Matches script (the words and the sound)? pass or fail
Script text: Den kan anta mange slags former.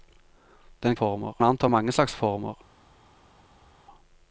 fail